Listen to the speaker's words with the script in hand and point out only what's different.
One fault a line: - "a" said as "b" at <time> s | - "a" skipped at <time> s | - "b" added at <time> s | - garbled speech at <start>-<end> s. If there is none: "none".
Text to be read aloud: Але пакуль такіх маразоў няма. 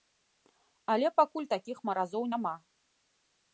none